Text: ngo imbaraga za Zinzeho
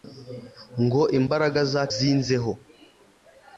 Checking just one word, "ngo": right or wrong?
right